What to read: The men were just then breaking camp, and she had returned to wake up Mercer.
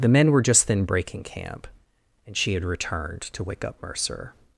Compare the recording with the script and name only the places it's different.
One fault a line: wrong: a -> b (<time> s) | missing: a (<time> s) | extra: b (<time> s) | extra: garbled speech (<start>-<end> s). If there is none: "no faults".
no faults